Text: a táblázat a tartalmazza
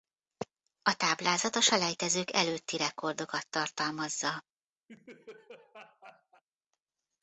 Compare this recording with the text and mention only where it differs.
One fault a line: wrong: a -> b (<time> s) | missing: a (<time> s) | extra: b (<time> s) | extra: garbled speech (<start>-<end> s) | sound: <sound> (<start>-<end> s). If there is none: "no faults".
extra: selejtezők előtti rekordokat (1.6 s)
sound: laugh (4.9-6.4 s)